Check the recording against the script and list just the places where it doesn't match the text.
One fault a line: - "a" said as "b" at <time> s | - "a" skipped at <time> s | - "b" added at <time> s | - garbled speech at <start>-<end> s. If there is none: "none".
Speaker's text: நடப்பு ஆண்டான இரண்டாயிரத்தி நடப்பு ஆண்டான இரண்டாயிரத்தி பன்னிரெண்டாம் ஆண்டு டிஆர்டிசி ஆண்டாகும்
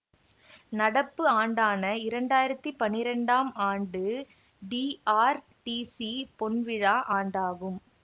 - "நடப்பு ஆண்டான இரண்டாயிரத்தி" skipped at 2.7 s
- "பொன்விழா" added at 6.4 s